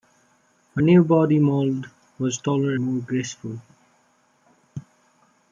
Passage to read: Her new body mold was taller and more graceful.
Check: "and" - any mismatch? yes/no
yes